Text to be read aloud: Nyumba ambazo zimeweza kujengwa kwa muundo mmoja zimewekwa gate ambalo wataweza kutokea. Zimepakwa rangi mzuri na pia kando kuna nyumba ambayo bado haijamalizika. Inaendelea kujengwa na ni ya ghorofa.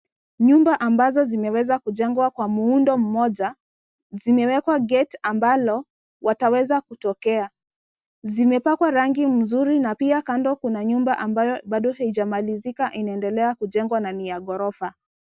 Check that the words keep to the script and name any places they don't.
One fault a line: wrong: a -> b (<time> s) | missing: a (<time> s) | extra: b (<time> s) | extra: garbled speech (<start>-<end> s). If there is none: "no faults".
no faults